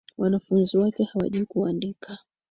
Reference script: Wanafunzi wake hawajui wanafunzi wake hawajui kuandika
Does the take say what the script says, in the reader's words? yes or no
no